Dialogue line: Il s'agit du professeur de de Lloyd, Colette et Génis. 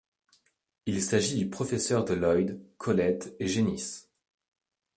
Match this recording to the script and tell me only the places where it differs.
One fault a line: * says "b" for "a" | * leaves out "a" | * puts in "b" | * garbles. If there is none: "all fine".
* leaves out "de"